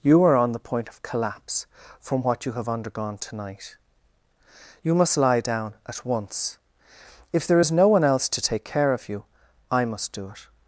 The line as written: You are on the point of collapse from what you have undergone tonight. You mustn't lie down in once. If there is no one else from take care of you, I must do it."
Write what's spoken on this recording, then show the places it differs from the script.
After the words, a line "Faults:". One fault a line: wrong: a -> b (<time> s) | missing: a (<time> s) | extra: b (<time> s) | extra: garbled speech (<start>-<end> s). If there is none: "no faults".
You are on the point of collapse from what you have undergone tonight. You must lie down at once. If there is no one else to take care of you, I must do it."
Faults:
wrong: mustn't -> must (4.9 s)
wrong: in -> at (5.9 s)
wrong: from -> to (8.3 s)